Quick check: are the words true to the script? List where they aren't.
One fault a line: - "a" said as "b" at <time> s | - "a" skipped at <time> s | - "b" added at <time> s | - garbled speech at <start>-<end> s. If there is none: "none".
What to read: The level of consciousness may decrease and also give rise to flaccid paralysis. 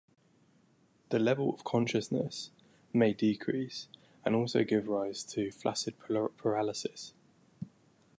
none